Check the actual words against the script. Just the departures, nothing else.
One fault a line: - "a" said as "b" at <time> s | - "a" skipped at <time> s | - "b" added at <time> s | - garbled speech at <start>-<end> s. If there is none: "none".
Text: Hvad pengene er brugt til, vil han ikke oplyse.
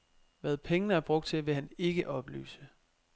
none